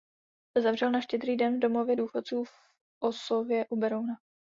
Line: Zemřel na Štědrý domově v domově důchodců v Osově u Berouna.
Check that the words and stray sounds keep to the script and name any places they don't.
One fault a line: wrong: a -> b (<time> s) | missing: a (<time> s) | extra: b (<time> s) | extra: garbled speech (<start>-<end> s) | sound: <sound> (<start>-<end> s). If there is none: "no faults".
wrong: domově -> den (1.4 s)